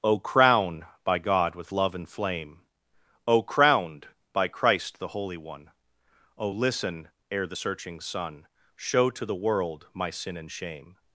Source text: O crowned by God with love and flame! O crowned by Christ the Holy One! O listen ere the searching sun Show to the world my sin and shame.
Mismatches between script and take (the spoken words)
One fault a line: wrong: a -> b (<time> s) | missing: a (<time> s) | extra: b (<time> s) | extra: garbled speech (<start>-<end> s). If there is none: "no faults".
wrong: crowned -> crown (0.2 s)